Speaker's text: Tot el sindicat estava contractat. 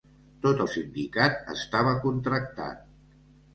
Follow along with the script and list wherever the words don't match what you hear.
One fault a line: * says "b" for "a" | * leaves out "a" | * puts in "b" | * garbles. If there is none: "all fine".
all fine